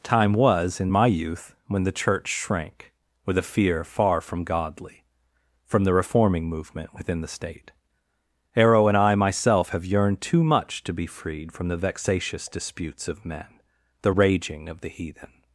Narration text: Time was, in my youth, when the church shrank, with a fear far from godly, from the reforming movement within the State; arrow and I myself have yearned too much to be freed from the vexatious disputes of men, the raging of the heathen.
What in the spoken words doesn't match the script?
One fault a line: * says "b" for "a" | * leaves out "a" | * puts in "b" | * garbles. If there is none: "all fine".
all fine